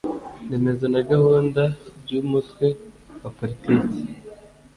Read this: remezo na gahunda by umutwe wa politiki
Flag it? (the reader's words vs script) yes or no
no